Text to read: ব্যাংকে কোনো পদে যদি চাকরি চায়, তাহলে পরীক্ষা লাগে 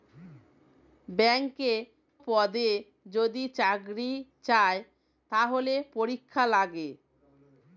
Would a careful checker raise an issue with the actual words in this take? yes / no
yes